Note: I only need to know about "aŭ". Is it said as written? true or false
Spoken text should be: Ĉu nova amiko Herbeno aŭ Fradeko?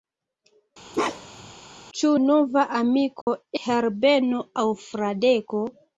true